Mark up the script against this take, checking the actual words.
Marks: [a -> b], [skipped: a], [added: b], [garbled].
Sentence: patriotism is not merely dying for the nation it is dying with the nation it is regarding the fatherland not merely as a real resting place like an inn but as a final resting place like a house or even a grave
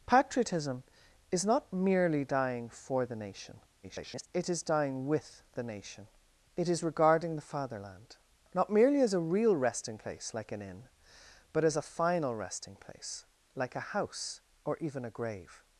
patriotism is not merely dying for the nation [garbled] it is dying with the nation it is regarding the fatherland not merely as a real resting place like an inn but as a final resting place like a house or even a grave